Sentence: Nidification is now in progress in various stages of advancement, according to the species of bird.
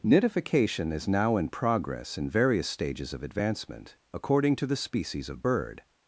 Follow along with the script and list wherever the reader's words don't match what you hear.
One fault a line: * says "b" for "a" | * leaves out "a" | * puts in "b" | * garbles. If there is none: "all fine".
all fine